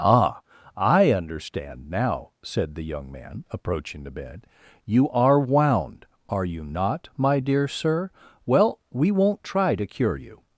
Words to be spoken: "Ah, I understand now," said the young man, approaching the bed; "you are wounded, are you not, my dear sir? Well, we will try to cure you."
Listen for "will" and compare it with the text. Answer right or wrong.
wrong